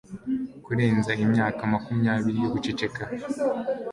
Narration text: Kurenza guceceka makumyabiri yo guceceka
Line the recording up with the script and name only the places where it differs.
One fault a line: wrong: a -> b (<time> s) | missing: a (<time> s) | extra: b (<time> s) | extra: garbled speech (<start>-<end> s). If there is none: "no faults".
wrong: guceceka -> imyaka (1.2 s)